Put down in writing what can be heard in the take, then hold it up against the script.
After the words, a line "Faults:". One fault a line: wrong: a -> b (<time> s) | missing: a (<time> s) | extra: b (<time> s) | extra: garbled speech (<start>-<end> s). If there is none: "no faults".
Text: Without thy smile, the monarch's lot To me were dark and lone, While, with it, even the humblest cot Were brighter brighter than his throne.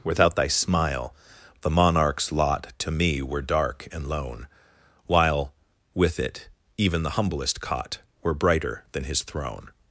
Without thy smile, the monarch's lot To me were dark and lone, While, with it, even the humblest cot Were brighter than his throne.
Faults:
missing: brighter (8.8 s)